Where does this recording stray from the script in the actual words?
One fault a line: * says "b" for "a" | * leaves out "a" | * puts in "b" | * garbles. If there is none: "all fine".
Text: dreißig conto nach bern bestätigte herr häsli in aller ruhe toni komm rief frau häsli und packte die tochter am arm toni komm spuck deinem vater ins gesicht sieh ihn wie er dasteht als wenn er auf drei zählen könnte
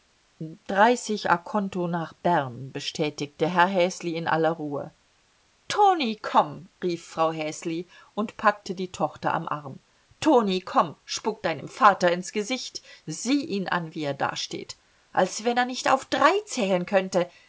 * puts in "an"
* puts in "nicht"